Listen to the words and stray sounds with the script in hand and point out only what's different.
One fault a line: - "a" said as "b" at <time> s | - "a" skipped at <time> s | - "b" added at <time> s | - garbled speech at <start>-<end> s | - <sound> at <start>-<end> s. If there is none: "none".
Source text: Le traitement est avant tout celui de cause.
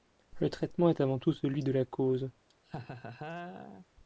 - "la" added at 1.7 s
- laugh at 2.5-3.9 s